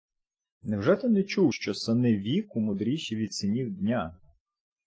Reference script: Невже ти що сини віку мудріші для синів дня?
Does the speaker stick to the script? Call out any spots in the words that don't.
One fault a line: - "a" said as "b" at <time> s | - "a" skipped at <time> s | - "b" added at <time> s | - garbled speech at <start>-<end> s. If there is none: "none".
- "не чув" added at 1.1 s
- "для" said as "від" at 3.1 s